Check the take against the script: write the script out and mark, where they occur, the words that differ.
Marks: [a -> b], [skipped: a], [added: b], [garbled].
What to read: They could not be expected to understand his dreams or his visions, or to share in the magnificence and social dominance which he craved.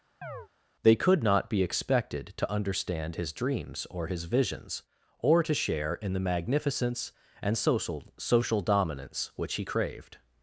They could not be expected to understand his dreams or his visions, or to share in the magnificence and social [added: social] dominance which he craved.